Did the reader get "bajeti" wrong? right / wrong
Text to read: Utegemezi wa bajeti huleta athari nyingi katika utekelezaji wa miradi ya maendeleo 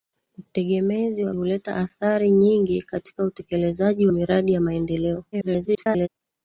wrong